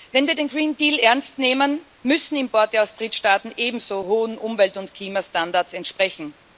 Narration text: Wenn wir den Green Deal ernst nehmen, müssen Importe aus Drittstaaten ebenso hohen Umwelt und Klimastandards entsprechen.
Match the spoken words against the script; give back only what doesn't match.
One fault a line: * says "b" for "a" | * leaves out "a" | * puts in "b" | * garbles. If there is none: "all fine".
all fine